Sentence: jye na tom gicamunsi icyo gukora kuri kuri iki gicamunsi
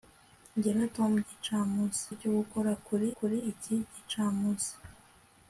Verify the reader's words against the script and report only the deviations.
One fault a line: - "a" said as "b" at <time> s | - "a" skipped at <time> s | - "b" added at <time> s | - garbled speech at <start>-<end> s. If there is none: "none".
none